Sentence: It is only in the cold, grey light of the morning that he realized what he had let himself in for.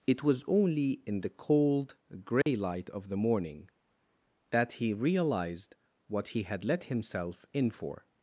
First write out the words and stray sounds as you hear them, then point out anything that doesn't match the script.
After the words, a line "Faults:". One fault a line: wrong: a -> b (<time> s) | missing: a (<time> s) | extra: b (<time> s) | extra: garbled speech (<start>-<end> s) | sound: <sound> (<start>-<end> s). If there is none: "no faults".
It was only in the cold, grey light of the morning that he realized what he had let himself in for.
Faults:
wrong: is -> was (0.2 s)
sound: dropout (2.4-2.5 s)